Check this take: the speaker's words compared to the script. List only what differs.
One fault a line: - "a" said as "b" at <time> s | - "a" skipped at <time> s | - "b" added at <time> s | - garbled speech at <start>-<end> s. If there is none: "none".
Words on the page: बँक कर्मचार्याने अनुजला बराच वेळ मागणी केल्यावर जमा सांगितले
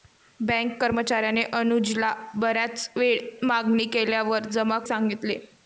none